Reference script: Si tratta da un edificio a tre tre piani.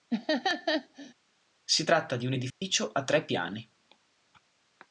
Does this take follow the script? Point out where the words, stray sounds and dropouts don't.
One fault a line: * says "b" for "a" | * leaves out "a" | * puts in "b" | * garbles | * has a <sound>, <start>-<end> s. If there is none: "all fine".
* has a laugh, 0.1-1.1 s
* says "di" for "da"
* has a dropout, 2.5-2.6 s
* leaves out "tre"